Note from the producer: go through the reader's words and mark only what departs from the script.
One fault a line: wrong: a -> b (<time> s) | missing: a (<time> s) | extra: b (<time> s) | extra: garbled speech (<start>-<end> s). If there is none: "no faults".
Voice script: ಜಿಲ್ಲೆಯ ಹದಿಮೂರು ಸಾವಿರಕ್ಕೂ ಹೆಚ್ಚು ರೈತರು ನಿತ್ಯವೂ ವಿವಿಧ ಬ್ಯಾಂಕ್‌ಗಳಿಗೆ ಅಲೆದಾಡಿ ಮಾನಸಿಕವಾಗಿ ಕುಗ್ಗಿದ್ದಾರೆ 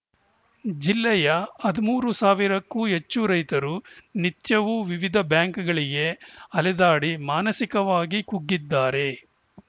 no faults